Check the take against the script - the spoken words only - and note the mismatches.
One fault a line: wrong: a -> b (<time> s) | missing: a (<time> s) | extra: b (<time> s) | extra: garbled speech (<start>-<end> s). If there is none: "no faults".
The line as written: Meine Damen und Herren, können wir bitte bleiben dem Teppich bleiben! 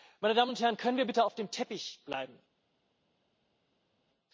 wrong: bleiben -> auf (1.2 s)